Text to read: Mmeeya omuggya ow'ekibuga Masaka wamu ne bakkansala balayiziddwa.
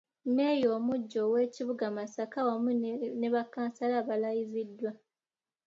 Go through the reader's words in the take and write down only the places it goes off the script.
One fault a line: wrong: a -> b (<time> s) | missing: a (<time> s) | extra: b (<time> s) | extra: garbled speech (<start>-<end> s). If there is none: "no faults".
no faults